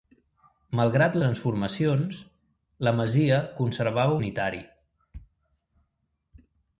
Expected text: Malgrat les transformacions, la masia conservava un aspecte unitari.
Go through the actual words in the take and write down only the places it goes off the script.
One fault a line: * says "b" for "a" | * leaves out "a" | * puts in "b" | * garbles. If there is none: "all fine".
* leaves out "les"
* leaves out "un aspecte"